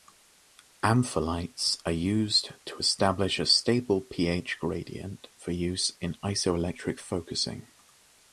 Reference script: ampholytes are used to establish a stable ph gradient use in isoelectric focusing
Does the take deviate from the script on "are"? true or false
false